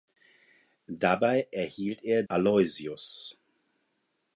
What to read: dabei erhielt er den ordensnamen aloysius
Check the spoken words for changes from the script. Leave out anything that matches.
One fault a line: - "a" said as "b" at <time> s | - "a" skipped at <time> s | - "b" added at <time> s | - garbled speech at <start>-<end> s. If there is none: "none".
- "den ordensnamen" skipped at 2.2 s